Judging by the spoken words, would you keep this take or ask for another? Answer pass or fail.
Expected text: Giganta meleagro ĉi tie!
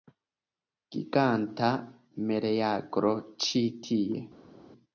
pass